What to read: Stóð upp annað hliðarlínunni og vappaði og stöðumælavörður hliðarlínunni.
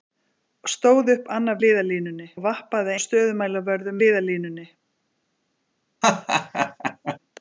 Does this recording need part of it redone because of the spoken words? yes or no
no